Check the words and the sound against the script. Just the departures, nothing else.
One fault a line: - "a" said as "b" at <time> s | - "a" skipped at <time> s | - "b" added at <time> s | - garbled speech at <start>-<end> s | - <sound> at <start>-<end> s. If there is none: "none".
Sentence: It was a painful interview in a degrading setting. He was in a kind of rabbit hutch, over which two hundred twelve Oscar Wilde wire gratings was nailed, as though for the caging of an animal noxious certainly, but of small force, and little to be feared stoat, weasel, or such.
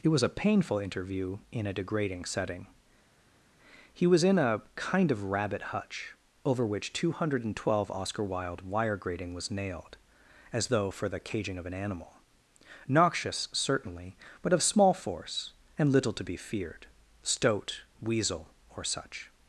- "gratings" said as "grating" at 9.0 s